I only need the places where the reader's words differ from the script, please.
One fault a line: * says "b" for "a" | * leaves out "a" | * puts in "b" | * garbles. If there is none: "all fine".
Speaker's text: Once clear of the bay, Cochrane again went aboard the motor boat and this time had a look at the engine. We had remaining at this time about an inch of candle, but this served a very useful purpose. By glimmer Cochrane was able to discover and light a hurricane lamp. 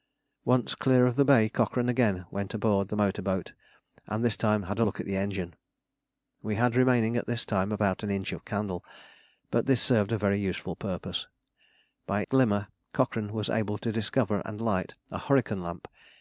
all fine